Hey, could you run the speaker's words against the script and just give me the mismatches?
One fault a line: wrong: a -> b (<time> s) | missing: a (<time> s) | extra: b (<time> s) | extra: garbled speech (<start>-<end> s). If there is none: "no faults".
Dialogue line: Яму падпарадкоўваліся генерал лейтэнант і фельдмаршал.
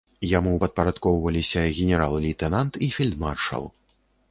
no faults